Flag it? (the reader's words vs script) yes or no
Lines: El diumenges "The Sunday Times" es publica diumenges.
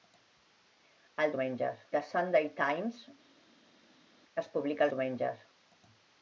no